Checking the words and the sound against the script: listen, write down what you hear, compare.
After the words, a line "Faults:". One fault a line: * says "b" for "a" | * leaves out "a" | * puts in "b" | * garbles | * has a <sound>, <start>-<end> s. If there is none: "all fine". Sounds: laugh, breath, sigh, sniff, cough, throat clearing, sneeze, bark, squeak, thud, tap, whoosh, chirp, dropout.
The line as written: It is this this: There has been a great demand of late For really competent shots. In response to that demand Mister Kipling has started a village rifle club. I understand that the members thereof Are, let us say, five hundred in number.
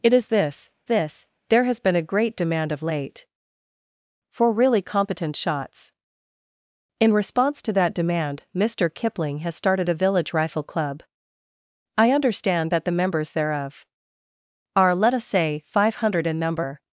It is this this: There has been a great demand of late For really competent shots. In response to that demand Mister Kipling has started a village rifle club. I understand that the members thereof Are, let us say, five hundred in number.
Faults:
all fine